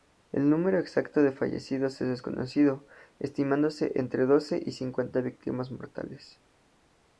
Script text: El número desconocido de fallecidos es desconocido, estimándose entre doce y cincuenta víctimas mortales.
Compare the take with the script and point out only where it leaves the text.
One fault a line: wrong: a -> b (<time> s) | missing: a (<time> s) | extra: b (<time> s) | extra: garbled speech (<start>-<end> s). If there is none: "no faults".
wrong: desconocido -> exacto (0.8 s)